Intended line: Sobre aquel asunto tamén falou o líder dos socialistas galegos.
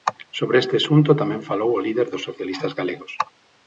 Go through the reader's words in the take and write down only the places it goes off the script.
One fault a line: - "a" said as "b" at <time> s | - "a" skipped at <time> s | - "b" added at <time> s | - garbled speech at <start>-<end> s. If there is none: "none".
- "aquel" said as "este" at 0.6 s